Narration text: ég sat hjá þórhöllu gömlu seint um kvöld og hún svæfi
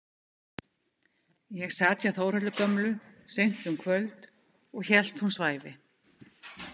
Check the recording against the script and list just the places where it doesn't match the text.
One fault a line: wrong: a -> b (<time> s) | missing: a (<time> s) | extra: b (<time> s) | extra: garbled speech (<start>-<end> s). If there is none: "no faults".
extra: hélt (4.9 s)